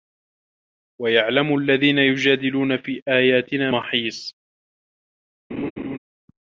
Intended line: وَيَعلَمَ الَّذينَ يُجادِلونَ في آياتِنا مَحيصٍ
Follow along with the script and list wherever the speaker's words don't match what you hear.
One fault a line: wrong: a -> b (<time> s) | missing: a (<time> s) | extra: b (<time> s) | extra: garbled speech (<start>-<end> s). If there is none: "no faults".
no faults